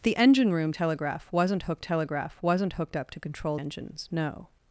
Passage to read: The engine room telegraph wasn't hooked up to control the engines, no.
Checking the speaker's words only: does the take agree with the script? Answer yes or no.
no